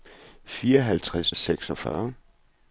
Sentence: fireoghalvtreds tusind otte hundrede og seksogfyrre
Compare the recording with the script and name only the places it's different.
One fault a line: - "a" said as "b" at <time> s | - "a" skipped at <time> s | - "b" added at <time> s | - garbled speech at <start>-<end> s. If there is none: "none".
- "tusind otte hundrede" skipped at 1.3 s